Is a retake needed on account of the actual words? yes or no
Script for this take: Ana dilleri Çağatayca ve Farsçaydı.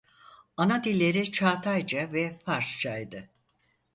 no